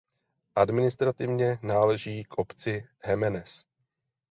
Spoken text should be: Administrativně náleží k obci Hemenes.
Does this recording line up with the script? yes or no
yes